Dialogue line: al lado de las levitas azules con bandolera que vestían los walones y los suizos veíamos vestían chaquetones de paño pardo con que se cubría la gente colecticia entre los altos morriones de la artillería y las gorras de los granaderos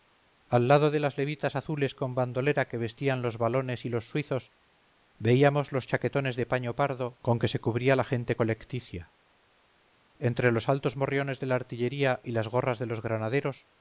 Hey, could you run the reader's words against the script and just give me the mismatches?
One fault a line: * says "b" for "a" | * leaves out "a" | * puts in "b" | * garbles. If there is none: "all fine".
* says "los" for "vestían"